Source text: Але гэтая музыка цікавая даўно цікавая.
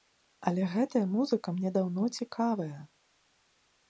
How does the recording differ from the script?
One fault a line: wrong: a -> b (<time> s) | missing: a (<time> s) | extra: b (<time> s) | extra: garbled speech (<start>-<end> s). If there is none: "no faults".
wrong: цікавая -> мне (1.6 s)